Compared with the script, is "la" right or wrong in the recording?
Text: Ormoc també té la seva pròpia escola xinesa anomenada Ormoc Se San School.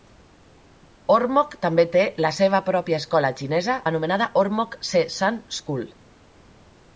right